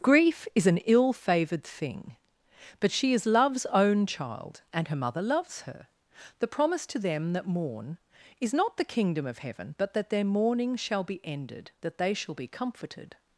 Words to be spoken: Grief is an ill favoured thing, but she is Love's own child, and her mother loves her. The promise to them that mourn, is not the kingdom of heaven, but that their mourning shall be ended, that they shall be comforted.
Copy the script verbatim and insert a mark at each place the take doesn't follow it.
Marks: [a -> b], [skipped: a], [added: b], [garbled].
Grief is an ill favoured thing, but she is Love's own child, and her mother loves her. The promise to them that mourn, is not the kingdom of heaven, but that their mourning shall be ended, that they shall be comforted.